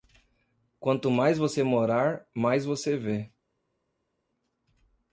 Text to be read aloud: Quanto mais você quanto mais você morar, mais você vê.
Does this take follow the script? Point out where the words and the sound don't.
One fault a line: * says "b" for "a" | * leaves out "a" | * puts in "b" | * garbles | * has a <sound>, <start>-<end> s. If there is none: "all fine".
* leaves out "quanto mais você"